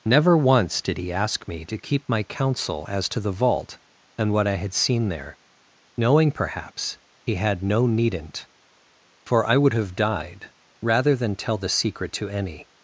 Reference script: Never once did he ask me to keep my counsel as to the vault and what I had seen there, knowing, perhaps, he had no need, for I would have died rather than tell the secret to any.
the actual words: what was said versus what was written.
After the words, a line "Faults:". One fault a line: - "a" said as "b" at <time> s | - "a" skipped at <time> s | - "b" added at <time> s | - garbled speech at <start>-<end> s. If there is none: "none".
Never once did he ask me to keep my counsel as to the vault and what I had seen there, knowing, perhaps, he had no needn't, for I would have died rather than tell the secret to any.
Faults:
- "need" said as "needn't" at 7.9 s